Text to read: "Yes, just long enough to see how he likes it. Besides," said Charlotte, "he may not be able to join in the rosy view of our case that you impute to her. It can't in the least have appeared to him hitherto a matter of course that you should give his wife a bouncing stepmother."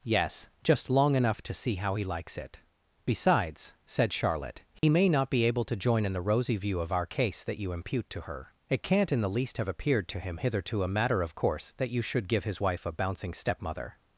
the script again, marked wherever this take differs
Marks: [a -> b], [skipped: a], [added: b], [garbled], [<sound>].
"Yes, just long enough to see how he likes it. Besides," said Charlotte, "he [dropout] may not be able to join in the rosy view of our case that you impute to her. It can't in the least have appeared to him hitherto a matter of course that you should give his wife a bouncing stepmother."